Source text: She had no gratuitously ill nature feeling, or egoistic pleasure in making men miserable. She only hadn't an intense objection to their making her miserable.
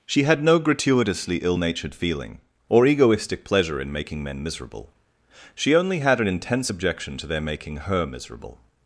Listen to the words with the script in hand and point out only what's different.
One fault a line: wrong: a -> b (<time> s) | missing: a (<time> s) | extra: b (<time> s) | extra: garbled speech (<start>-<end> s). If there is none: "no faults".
wrong: nature -> natured (1.5 s)
wrong: hadn't -> had (6.0 s)